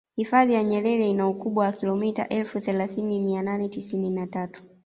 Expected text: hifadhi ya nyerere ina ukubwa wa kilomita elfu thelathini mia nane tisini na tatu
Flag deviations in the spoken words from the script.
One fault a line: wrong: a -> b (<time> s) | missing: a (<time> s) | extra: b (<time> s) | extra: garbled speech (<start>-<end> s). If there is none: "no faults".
no faults